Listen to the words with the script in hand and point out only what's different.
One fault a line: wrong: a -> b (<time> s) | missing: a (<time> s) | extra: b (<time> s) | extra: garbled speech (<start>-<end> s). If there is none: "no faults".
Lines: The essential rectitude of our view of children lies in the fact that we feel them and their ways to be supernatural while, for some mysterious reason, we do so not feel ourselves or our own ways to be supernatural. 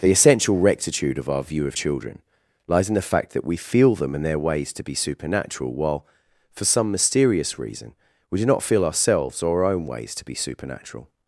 missing: so (8.4 s)